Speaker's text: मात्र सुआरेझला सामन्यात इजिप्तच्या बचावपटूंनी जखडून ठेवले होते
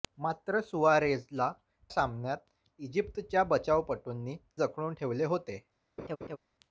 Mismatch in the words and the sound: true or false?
true